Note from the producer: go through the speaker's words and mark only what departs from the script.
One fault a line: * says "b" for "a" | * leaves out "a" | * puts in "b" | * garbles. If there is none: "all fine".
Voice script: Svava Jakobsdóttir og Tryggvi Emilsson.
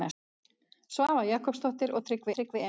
* puts in "Tryggvi"